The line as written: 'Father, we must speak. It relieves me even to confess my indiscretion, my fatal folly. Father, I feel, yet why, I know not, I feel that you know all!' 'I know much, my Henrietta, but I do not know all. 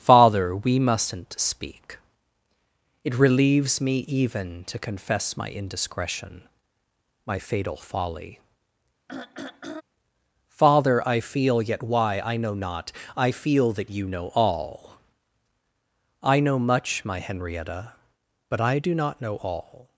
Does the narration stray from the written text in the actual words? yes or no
yes